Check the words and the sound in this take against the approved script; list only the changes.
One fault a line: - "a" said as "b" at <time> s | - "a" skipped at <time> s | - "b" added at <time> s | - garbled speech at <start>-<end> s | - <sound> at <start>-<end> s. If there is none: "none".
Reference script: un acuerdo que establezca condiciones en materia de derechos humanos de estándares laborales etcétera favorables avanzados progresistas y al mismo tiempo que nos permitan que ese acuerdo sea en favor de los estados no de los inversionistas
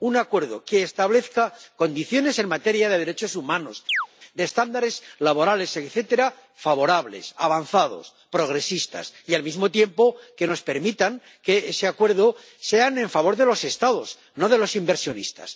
- chirp at 3.9-4.1 s